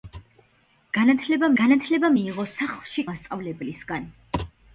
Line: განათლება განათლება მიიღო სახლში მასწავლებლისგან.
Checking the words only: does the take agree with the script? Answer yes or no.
yes